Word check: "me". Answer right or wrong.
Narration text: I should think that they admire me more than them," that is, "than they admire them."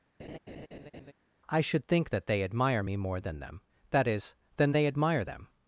right